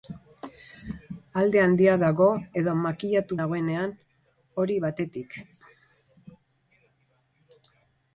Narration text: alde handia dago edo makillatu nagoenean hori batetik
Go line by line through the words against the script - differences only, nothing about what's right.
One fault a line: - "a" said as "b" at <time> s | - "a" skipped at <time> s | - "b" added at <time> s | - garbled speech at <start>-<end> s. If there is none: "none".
none